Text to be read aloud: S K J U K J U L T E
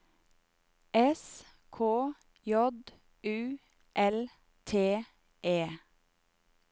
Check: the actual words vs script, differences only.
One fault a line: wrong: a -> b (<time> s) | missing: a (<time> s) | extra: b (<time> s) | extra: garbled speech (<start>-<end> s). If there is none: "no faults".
missing: K J U (3.6 s)